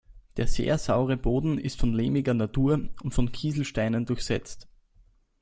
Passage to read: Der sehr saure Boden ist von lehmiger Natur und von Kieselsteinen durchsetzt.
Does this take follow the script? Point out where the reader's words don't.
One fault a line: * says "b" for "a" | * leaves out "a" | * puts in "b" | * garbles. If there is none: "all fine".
all fine